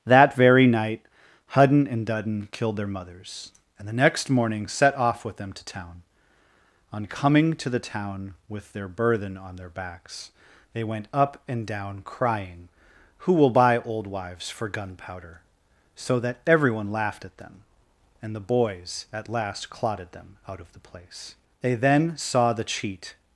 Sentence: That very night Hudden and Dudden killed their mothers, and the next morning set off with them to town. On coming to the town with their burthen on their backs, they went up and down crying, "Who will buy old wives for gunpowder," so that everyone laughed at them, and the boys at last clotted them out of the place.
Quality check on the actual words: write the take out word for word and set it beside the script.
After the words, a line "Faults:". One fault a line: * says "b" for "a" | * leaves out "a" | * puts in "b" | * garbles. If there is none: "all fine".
That very night Hudden and Dudden killed their mothers, and the next morning set off with them to town. On coming to the town with their burthen on their backs, they went up and down crying, "Who will buy old wives for gunpowder," so that everyone laughed at them, and the boys at last clotted them out of the place. They then saw the cheat
Faults:
* puts in "They then saw the cheat"